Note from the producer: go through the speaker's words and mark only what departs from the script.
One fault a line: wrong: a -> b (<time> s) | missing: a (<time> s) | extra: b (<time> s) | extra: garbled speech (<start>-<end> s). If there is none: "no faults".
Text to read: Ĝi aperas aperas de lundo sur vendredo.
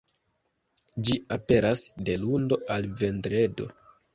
missing: aperas (1.8 s)
wrong: sur -> al (2.8 s)